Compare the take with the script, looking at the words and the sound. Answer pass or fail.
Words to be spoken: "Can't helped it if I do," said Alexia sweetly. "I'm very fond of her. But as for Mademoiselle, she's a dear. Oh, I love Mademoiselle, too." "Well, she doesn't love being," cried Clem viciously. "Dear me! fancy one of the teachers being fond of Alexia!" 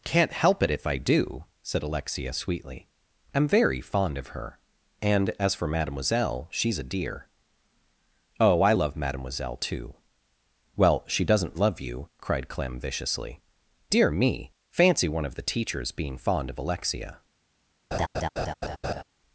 fail